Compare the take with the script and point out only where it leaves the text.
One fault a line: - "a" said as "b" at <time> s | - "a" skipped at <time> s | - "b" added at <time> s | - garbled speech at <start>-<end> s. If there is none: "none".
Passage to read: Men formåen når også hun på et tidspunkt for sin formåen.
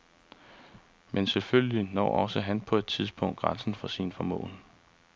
- "formåen" said as "selvfølgelig" at 1.3 s
- "hun" said as "han" at 2.4 s
- "grænsen" added at 3.4 s